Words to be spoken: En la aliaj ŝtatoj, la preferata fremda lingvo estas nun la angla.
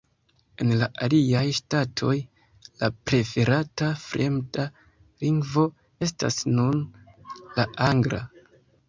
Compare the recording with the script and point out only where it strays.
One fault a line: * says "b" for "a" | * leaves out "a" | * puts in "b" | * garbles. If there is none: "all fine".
all fine